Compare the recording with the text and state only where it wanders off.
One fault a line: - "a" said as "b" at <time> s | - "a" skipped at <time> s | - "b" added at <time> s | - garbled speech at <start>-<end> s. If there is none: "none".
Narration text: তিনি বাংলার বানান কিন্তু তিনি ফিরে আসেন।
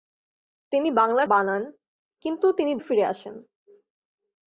none